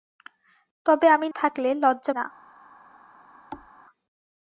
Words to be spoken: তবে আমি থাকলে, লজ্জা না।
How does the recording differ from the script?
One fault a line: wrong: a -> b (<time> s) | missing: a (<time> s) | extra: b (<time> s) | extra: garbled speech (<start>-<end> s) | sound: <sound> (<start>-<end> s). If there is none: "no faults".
sound: thud (3.5-3.7 s)